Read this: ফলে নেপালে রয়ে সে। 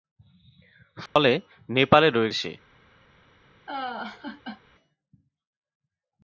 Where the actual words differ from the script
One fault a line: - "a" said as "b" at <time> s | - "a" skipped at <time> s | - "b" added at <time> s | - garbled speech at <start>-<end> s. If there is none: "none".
none